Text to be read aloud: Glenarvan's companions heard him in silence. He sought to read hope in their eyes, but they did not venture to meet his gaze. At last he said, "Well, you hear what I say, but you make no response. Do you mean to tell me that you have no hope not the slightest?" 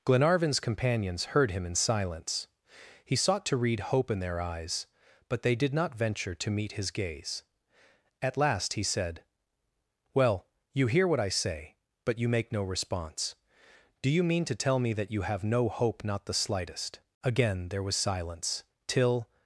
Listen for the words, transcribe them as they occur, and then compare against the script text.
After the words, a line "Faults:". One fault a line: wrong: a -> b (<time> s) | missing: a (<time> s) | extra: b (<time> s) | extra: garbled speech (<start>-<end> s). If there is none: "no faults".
Glenarvan's companions heard him in silence. He sought to read hope in their eyes, but they did not venture to meet his gaze. At last he said, "Well, you hear what I say, but you make no response. Do you mean to tell me that you have no hope not the slightest?" Again there was silence, till
Faults:
extra: Again there was silence till (17.2 s)